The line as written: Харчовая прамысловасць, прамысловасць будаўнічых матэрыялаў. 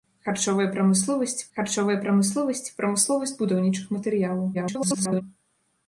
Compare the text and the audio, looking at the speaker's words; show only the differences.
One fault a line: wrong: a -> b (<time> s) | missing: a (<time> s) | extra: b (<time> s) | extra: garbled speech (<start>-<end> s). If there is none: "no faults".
extra: харчовая прамысловасць (1.6 s)
extra: garbled speech (4.5-5.2 s)